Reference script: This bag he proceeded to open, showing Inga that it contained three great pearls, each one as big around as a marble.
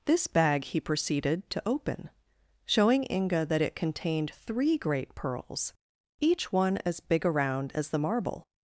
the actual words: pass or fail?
fail